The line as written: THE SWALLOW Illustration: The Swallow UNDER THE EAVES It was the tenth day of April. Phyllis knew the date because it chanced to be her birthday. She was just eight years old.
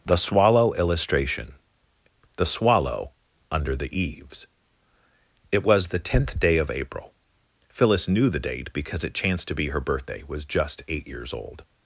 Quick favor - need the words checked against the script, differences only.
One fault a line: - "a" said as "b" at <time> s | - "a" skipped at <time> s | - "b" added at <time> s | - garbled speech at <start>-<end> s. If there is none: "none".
- "She" skipped at 10.2 s